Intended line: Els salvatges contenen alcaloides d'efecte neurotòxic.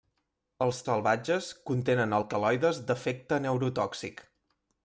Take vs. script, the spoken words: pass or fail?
pass